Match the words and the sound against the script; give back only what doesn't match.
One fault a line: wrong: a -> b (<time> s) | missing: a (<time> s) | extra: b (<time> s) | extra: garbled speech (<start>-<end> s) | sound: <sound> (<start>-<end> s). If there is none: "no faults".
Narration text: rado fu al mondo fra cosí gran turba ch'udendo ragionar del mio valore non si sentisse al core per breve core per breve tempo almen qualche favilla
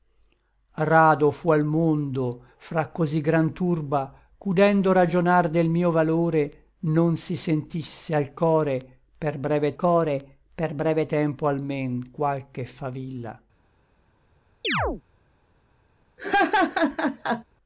sound: chirp (14.6-15.0 s)
sound: laugh (16.2-17.4 s)